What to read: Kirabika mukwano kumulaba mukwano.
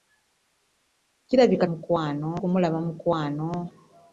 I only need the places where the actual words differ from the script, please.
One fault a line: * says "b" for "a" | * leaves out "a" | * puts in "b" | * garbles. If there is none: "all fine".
all fine